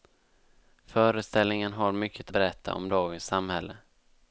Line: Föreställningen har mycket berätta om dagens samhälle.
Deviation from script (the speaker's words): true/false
false